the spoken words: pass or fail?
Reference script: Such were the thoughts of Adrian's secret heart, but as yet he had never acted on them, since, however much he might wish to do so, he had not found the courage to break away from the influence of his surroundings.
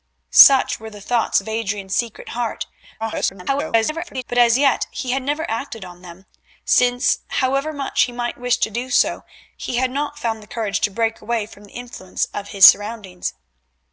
fail